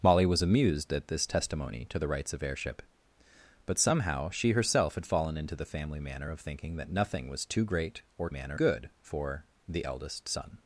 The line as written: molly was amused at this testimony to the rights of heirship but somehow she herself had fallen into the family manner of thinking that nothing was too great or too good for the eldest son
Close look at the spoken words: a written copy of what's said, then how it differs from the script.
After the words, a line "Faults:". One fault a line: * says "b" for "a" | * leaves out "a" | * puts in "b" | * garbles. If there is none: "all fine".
molly was amused at this testimony to the rights of heirship but somehow she herself had fallen into the family manner of thinking that nothing was too great or manner good for the eldest son
Faults:
* says "manner" for "too"